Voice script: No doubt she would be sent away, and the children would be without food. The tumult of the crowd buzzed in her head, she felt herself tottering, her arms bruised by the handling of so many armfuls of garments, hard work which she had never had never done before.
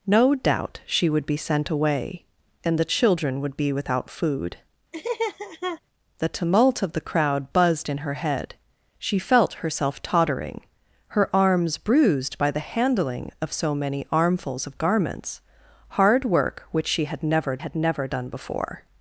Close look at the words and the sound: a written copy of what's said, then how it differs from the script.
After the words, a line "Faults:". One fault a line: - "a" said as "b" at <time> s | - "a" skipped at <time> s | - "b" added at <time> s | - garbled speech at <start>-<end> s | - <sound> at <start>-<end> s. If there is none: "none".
No doubt she would be sent away, and the children would be without food. The tumult of the crowd buzzed in her head, she felt herself tottering, her arms bruised by the handling of so many armfuls of garments, hard work which she had never had never done before.
Faults:
- laugh at 4.9-5.8 s